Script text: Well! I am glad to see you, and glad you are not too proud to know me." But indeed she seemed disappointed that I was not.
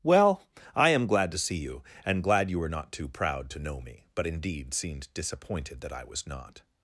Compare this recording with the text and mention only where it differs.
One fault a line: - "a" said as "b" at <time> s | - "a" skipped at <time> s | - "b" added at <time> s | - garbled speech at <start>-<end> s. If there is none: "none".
- "are" said as "were" at 2.6 s
- "she" skipped at 4.7 s